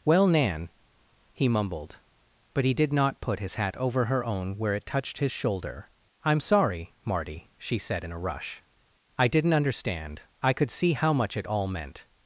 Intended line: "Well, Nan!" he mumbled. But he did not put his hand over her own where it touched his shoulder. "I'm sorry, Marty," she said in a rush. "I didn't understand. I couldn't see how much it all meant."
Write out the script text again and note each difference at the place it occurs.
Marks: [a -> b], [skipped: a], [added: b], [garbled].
"Well, Nan!" he mumbled. But he did not put his [hand -> hat] over her own where it touched his shoulder. "I'm sorry, Marty," she said in a rush. "I didn't understand. I [couldn't -> could] see how much it all meant."